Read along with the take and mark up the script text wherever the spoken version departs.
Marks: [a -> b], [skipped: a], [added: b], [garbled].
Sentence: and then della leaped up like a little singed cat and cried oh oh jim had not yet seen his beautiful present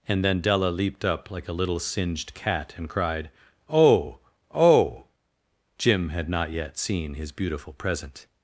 and then della leaped up like a little singed cat and cried oh oh jim had not yet seen his beautiful present